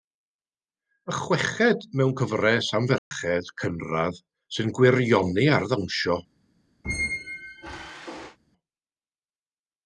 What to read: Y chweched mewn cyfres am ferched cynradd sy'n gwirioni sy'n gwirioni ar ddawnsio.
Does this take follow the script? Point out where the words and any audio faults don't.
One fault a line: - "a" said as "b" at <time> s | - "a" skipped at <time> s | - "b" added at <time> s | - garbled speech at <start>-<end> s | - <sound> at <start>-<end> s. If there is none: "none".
- dropout at 3.0-3.1 s
- "sy'n gwirioni" skipped at 5.5 s
- squeak at 6.8-8.4 s